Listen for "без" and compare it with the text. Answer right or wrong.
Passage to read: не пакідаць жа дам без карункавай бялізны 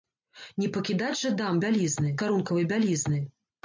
wrong